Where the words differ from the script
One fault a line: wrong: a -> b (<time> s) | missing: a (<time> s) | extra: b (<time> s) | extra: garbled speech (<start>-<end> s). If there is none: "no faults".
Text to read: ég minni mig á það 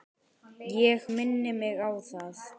no faults